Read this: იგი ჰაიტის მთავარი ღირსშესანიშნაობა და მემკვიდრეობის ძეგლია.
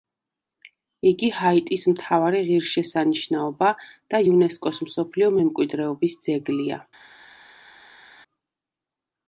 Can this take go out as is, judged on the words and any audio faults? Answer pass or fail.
fail